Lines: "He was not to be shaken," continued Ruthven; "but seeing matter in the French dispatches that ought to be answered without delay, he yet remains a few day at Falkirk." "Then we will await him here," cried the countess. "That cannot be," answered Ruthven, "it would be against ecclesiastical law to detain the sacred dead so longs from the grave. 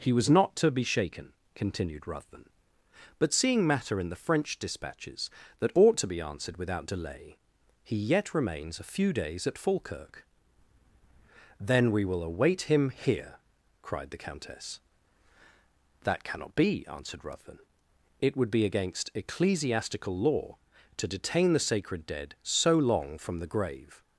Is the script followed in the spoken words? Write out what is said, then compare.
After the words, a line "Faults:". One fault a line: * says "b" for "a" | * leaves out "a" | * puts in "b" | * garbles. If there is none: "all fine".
"He was not to be shaken," continued Ruthven; "but seeing matter in the French dispatches that ought to be answered without delay, he yet remains a few days at Falkirk." "Then we will await him here," cried the countess. "That cannot be," answered Ruthven, "it would be against ecclesiastical law to detain the sacred dead so long from the grave.
Faults:
* says "days" for "day"
* says "long" for "longs"